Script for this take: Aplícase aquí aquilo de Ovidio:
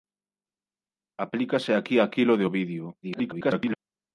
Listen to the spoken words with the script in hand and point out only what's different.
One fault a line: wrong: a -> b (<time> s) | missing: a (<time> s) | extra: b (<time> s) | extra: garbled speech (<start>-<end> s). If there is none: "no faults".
extra: garbled speech (3.0-3.8 s)